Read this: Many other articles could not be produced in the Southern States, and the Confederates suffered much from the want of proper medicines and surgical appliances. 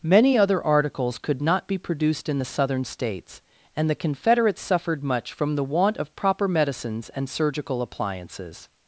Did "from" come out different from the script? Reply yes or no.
no